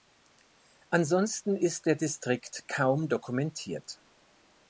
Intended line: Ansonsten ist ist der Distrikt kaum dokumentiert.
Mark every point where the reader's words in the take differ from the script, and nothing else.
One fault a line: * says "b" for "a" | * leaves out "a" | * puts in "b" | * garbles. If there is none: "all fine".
* leaves out "ist"